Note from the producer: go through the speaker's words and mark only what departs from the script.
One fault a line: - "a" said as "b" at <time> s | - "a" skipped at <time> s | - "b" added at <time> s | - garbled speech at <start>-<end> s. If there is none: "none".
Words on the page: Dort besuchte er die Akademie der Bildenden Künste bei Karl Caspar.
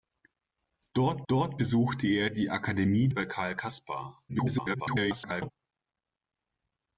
- "dort" added at 1.3 s
- "der Bildenden Künste" skipped at 3.1 s
- garbled speech at 4.3-5.5 s